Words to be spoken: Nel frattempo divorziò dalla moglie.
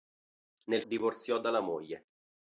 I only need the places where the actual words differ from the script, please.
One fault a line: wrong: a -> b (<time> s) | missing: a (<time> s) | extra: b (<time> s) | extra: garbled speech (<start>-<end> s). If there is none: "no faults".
missing: frattempo (0.8 s)